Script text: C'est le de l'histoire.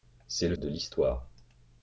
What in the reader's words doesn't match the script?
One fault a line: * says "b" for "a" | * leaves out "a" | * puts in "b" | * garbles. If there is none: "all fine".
all fine